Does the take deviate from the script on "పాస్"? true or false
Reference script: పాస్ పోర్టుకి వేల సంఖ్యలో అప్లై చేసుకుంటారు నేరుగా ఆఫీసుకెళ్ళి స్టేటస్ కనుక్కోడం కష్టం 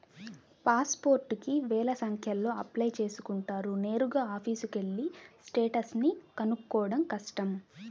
false